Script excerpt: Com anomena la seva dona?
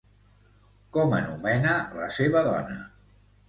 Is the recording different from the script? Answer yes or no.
no